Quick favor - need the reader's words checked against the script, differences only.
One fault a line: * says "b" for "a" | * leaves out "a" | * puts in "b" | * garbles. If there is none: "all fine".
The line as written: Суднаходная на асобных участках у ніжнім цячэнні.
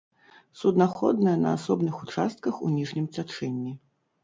all fine